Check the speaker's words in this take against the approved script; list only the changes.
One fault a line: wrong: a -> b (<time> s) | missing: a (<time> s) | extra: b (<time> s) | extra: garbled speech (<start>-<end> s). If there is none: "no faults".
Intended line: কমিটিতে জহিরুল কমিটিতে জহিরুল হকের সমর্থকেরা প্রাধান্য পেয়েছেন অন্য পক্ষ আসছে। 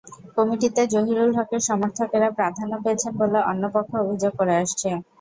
missing: কমিটিতে জহিরুল (1.3 s)
extra: বলে (3.2 s)
extra: অভিযোগ করে (4.0 s)